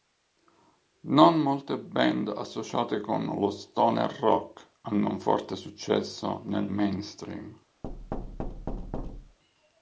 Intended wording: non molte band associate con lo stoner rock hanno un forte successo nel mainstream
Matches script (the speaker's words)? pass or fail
pass